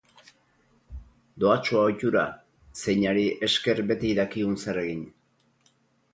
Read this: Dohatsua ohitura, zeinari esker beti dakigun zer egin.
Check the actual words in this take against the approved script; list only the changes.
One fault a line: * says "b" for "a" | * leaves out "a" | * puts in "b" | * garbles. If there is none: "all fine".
all fine